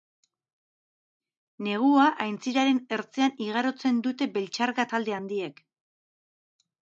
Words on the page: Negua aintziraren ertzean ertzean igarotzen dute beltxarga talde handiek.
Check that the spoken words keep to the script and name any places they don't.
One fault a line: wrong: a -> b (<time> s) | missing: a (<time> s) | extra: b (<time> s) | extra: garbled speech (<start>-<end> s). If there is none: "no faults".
missing: ertzean (3.4 s)